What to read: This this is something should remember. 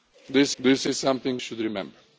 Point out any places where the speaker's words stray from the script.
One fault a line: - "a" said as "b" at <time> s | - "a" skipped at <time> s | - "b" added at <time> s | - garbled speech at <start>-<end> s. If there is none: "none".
none